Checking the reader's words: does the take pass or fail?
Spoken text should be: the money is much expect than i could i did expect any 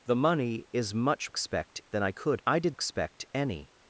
pass